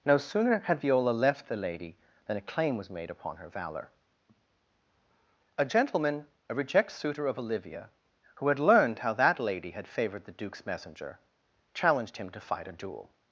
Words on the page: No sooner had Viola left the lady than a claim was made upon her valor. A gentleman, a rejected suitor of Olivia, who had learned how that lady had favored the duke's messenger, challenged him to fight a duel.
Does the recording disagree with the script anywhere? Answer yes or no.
yes